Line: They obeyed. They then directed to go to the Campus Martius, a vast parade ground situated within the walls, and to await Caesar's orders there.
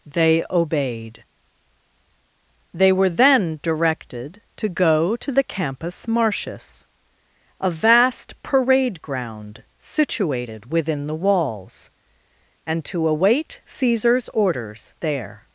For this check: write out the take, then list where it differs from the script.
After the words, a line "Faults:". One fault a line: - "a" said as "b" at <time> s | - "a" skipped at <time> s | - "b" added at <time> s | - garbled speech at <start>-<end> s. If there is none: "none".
They obeyed. They were then directed to go to the Campus Martius, a vast parade ground situated within the walls, and to await Caesar's orders there.
Faults:
- "were" added at 2.9 s